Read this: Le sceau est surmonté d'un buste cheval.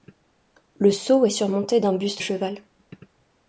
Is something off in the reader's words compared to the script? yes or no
no